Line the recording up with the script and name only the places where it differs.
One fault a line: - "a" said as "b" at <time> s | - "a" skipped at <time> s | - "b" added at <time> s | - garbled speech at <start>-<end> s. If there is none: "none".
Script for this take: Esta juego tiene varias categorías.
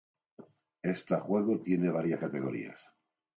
none